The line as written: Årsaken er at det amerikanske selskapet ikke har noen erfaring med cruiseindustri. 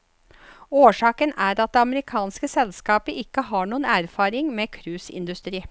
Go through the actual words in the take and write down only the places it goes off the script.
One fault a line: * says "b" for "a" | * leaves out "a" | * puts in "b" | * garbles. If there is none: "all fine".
all fine